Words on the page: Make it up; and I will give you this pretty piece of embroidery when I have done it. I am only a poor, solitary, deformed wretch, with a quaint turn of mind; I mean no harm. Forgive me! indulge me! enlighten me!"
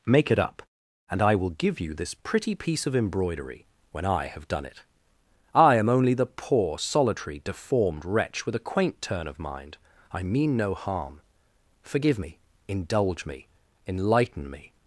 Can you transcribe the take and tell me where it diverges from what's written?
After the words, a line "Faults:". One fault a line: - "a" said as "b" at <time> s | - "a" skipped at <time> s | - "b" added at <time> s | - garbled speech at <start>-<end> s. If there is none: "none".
Make it up; and I will give you this pretty piece of embroidery when I have done it. I am only the poor, solitary, deformed wretch, with a quaint turn of mind; I mean no harm. Forgive me! indulge me! enlighten me!"
Faults:
- "a" said as "the" at 6.1 s